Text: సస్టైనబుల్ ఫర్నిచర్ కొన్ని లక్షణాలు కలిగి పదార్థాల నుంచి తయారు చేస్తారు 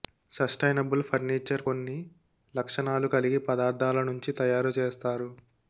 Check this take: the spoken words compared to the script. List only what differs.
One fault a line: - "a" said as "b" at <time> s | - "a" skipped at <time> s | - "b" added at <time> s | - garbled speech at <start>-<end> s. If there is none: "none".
none